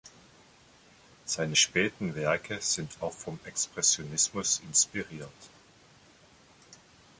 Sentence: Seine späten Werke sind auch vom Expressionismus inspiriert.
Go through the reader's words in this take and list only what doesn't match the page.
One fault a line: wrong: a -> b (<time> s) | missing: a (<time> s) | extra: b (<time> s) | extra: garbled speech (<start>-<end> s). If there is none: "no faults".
no faults